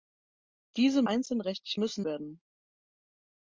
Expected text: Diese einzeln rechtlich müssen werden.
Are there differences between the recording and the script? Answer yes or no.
no